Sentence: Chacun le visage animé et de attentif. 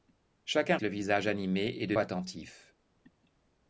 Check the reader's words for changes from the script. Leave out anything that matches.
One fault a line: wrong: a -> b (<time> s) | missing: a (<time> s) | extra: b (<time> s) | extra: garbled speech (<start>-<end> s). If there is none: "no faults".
no faults